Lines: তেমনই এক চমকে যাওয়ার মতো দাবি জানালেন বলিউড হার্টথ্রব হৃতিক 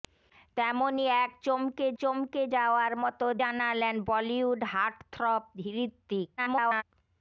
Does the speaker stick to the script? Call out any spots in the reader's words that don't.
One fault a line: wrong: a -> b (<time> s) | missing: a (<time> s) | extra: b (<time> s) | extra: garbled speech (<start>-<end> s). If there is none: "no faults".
extra: চমকে (2.0 s)
missing: দাবি (3.3 s)
extra: garbled speech (6.4-6.8 s)